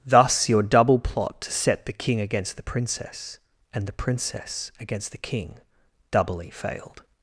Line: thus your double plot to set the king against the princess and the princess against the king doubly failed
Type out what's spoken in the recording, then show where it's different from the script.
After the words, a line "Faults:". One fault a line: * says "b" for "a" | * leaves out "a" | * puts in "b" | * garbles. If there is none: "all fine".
thus your double plot to set the king against the princess and the princess against the king doubly failed
Faults:
all fine